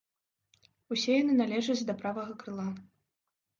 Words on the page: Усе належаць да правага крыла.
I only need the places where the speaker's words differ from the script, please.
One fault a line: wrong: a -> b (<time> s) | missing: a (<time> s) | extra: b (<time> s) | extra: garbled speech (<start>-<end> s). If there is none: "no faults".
extra: яны (1.2 s)